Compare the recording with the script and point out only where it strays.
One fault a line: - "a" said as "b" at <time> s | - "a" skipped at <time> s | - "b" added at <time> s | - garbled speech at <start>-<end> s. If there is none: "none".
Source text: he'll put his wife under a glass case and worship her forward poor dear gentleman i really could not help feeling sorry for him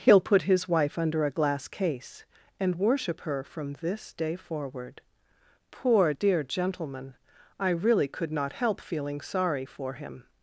- "from this day" added at 3.4 s